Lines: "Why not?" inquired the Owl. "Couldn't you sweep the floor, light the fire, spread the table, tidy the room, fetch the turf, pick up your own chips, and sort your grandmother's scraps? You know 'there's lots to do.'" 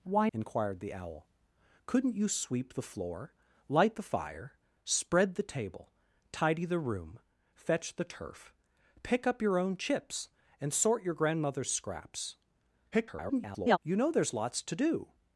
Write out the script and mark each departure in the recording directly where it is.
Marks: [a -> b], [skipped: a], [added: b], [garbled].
"Why [skipped: not?"] inquired the Owl. "Couldn't you sweep the floor, light the fire, spread the table, tidy the room, fetch the turf, pick up your own chips, and sort your grandmother's scraps? [garbled] You know 'there's lots to do.'"